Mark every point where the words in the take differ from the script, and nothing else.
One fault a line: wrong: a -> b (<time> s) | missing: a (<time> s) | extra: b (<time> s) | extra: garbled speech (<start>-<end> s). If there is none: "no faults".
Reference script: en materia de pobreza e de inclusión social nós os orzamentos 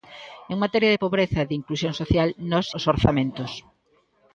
no faults